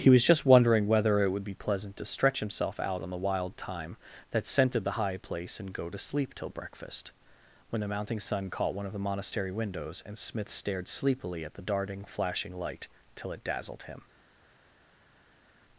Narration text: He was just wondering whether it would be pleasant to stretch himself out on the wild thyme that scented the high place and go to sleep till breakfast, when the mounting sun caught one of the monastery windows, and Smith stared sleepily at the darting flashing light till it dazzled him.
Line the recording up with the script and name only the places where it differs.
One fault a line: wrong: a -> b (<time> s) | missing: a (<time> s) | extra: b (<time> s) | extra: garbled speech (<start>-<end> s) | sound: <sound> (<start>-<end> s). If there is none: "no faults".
no faults